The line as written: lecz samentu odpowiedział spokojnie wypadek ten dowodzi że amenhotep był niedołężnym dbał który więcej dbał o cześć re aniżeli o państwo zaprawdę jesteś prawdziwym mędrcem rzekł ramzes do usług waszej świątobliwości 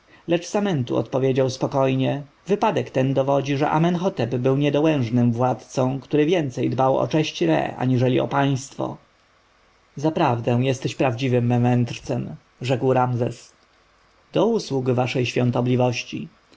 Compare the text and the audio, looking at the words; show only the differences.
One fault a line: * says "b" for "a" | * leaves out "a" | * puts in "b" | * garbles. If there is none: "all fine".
* says "władcą" for "dbał"